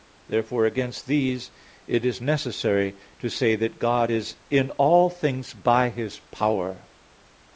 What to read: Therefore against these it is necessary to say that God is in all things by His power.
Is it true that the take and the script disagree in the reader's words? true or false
false